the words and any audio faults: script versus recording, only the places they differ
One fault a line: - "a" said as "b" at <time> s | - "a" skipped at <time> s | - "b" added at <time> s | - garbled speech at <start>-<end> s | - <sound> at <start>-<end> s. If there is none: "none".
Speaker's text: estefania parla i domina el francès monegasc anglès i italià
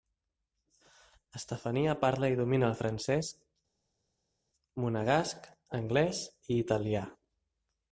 none